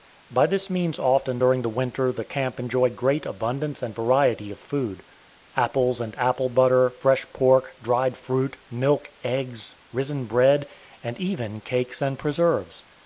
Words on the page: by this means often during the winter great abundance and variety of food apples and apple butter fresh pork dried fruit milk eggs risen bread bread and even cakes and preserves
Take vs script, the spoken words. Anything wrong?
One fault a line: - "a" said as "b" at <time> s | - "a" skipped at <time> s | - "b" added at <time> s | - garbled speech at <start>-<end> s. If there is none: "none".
- "the camp enjoyed" added at 2.1 s
- "bread" skipped at 10.7 s